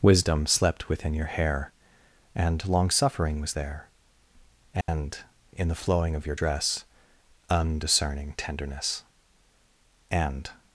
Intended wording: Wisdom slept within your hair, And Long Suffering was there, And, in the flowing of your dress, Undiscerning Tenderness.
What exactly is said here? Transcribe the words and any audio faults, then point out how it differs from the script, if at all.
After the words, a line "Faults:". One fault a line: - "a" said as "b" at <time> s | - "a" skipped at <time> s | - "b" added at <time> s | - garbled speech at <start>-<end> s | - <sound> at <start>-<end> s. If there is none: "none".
Wisdom slept within your hair, And Long Suffering was there, And, in the flowing of your dress, Undiscerning Tenderness. And
Faults:
- dropout at 4.8-4.9 s
- "And" added at 10.1 s